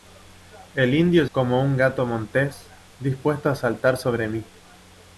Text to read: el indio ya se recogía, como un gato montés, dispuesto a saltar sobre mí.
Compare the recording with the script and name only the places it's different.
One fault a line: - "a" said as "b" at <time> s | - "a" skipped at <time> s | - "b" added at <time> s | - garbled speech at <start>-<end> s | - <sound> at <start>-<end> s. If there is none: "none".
- "ya se recogía" skipped at 1.2 s